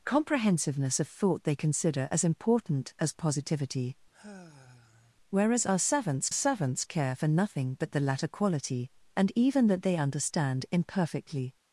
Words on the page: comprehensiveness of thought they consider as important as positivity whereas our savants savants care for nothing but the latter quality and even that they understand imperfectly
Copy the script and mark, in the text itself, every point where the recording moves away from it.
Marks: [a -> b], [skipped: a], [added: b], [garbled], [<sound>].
comprehensiveness of thought they consider as important as positivity [sigh] whereas our savants savants care for nothing but the latter quality and even that they understand imperfectly